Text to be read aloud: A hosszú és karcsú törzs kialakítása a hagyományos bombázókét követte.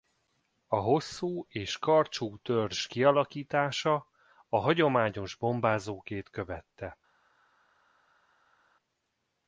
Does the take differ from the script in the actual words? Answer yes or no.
no